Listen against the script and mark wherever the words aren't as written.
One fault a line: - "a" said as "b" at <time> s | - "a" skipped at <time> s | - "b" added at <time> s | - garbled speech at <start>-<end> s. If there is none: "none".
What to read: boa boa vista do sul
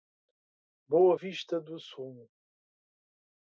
- "boa" skipped at 1.1 s